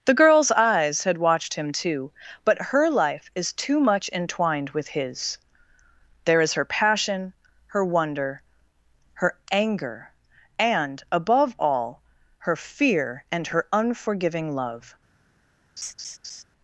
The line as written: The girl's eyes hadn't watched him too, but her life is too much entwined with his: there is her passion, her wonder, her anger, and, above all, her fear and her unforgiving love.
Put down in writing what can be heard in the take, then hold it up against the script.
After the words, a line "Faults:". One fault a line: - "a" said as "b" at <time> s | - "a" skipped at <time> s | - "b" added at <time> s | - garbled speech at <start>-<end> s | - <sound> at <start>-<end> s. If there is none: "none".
The girl's eyes had watched him too, but her life is too much entwined with his: there is her passion, her wonder, her anger, and, above all, her fear and her unforgiving love.
Faults:
- "hadn't" said as "had" at 1.0 s
- laugh at 15.8-16.4 s